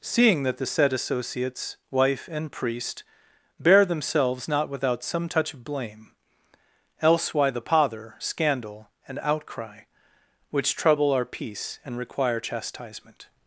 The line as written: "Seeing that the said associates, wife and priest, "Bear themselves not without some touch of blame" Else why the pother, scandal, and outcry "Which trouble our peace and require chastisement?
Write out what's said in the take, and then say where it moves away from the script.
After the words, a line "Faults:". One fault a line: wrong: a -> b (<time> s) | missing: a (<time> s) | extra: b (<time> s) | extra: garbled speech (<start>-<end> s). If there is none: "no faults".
"Seeing that the said associates, wife and priest, "Bear themselves not without some touch of blame" Else why the pother, scandal, and outcry "Which trouble our peace and require chastisement?
Faults:
no faults